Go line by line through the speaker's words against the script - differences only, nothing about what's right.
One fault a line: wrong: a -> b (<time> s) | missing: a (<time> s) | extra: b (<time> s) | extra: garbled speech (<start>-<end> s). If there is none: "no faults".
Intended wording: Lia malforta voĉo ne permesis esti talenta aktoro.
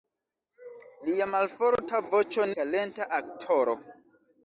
missing: ne permesis esti (2.5 s)